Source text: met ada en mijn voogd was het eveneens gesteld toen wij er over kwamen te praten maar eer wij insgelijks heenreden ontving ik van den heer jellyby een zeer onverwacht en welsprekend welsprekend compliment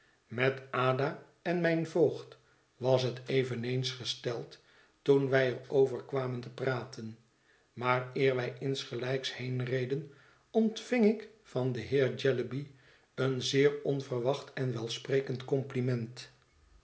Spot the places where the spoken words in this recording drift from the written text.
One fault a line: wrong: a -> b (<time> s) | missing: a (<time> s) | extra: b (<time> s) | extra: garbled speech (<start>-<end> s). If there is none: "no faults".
missing: welsprekend (15.5 s)